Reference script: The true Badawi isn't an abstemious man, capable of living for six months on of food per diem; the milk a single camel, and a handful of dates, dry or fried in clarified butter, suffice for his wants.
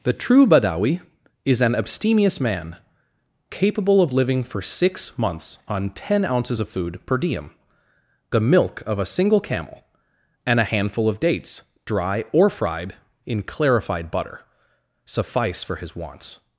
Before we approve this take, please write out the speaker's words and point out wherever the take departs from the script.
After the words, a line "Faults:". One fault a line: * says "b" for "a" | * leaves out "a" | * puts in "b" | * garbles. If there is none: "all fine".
The true Badawi is an abstemious man, capable of living for six months on ten ounces of food per diem; the milk of a single camel, and a handful of dates, dry or fried in clarified butter, suffice for his wants.
Faults:
* says "is" for "isn't"
* puts in "ten ounces"
* puts in "of"